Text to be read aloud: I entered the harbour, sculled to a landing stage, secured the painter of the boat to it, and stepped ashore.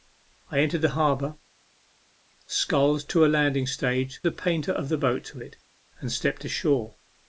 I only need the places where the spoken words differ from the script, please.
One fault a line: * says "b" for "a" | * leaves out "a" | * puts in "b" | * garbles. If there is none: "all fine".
* leaves out "secured"